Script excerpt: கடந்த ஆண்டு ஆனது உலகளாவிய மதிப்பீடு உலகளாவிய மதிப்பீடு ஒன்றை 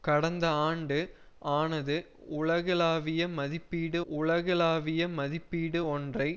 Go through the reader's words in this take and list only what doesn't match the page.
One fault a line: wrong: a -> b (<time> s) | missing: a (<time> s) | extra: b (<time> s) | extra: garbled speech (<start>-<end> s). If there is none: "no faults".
no faults